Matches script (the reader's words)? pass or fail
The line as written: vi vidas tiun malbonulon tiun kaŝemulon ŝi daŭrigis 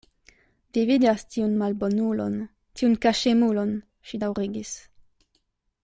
pass